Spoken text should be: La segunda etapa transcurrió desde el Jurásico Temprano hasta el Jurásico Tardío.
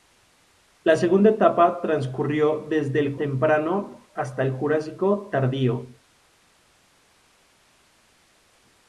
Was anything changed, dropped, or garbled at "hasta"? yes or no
no